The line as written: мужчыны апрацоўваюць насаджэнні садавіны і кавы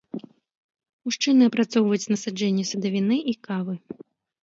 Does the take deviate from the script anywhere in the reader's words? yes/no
no